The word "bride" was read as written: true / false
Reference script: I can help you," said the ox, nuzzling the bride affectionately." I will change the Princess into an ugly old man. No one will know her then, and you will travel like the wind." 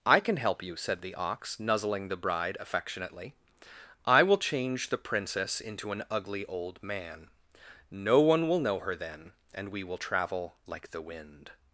true